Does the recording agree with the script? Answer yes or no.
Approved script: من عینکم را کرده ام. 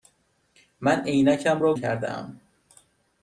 yes